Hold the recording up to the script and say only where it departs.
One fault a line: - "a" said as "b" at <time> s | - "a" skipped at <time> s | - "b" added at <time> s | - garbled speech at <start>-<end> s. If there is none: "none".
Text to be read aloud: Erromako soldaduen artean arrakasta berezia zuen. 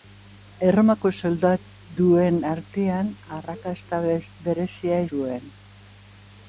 none